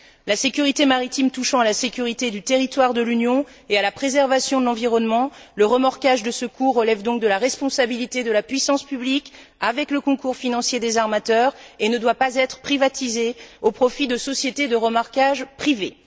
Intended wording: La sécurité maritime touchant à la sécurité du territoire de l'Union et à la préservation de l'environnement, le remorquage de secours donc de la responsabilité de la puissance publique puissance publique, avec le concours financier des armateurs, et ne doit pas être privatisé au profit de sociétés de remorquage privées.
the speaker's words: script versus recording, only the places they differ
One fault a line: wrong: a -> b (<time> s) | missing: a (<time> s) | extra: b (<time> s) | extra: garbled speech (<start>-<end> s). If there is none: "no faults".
extra: relève (6.8 s)
missing: puissance publique (9.3 s)